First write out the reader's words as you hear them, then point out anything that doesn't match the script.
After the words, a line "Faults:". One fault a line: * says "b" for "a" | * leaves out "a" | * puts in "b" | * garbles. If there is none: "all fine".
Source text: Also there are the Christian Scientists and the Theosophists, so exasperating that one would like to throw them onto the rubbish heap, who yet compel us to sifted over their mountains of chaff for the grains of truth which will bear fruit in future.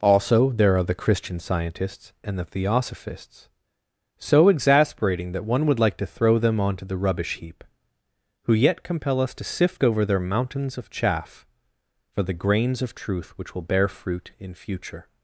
Also there are the Christian Scientists and the Theosophists, so exasperating that one would like to throw them onto the rubbish heap, who yet compel us to sift over their mountains of chaff for the grains of truth which will bear fruit in future.
Faults:
* says "sift" for "sifted"